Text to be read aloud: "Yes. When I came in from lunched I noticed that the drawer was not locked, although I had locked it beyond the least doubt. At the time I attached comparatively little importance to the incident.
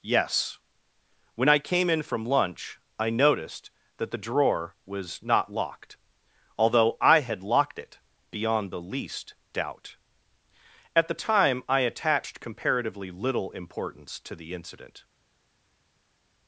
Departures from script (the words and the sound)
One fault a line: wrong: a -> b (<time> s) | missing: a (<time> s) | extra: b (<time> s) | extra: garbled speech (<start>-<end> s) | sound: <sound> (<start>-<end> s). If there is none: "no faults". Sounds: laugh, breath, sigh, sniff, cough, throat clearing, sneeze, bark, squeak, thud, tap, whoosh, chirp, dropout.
wrong: lunched -> lunch (2.2 s)